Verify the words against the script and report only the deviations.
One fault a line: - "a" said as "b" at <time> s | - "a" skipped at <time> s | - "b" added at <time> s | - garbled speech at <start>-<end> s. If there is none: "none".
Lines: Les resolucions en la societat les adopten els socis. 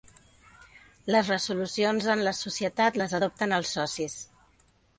none